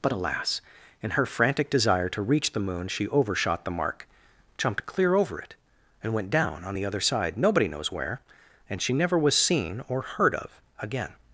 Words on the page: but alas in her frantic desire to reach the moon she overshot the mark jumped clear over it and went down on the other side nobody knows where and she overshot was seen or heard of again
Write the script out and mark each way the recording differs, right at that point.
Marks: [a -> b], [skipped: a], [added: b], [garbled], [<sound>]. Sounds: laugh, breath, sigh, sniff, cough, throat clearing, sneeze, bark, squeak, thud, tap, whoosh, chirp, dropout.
but alas in her frantic desire to reach the moon she overshot the mark jumped clear over it and went down on the other side nobody knows where and she [overshot -> never] was seen or heard of again